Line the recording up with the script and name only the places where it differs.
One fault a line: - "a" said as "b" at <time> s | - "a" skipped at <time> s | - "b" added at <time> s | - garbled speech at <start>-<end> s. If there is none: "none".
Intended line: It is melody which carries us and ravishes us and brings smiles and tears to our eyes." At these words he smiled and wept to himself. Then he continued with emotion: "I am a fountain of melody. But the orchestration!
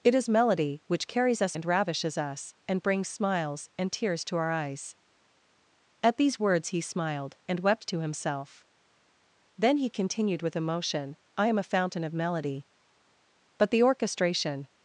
none